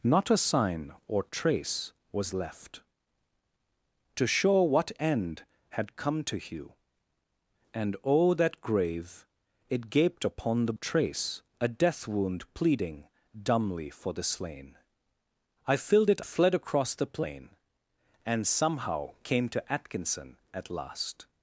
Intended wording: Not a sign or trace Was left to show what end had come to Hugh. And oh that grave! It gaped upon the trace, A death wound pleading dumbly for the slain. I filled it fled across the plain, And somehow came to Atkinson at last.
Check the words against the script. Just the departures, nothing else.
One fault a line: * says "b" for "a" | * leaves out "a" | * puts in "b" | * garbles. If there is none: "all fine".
all fine